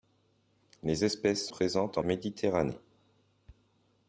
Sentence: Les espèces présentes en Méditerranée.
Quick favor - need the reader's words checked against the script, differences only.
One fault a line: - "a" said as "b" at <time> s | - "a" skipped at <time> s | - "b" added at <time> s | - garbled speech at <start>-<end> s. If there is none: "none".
none